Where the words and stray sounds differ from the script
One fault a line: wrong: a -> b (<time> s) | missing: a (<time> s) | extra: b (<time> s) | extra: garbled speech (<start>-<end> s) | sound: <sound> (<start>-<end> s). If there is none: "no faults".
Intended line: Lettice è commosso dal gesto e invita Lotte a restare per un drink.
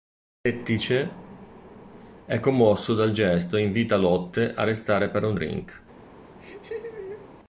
sound: laugh (6.4-7.3 s)